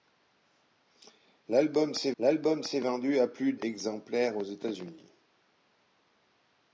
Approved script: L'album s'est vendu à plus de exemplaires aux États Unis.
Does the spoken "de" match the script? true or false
false